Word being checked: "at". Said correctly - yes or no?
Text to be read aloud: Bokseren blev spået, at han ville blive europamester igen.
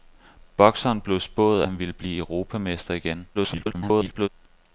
no